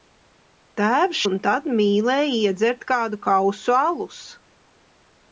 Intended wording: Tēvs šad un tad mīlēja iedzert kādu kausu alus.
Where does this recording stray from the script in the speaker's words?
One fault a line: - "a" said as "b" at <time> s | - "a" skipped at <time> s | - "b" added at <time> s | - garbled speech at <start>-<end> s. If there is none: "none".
- "šad" skipped at 1.2 s